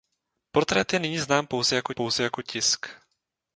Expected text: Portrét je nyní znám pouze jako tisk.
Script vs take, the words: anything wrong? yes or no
yes